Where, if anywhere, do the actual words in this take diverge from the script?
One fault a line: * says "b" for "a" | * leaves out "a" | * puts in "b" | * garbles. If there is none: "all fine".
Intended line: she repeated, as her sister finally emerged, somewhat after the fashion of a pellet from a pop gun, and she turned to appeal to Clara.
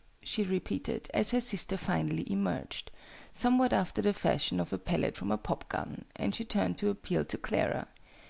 all fine